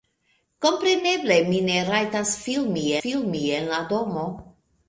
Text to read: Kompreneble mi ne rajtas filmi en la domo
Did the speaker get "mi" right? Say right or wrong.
right